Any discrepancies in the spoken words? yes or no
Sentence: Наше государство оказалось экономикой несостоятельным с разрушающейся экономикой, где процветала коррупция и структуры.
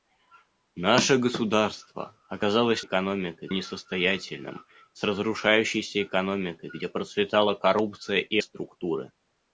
no